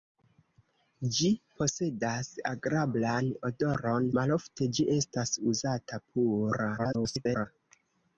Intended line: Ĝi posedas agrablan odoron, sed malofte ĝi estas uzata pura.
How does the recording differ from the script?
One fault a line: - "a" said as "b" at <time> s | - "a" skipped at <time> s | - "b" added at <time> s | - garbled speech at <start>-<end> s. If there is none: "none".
- "sed" skipped at 4.1 s
- garbled speech at 6.8-7.5 s